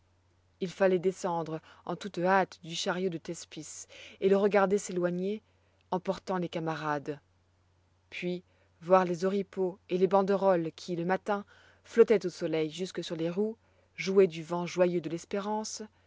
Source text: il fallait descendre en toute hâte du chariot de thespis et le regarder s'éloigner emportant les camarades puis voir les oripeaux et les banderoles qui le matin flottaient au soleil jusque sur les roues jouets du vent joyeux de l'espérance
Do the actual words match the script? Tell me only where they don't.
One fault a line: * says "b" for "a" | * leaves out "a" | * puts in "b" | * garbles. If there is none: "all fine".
all fine